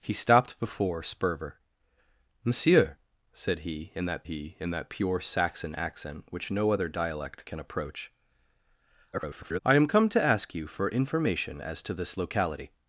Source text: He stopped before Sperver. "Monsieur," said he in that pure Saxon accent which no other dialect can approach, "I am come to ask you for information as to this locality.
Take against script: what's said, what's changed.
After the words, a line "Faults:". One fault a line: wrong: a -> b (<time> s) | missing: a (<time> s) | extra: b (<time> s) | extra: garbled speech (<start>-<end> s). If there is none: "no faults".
He stopped before Sperver. "Monsieur," said he in that he in that pure Saxon accent which no other dialect can approach, [garbled] "I am come to ask you for information as to this locality.
Faults:
extra: he in that (4.2 s)
extra: garbled speech (9.1-9.6 s)